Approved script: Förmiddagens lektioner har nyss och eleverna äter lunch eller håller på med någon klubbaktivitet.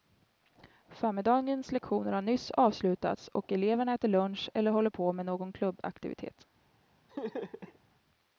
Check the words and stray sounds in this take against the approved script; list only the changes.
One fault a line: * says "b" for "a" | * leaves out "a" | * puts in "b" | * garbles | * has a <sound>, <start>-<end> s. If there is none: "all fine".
* puts in "avslutats"
* has a laugh, 7.1-7.8 s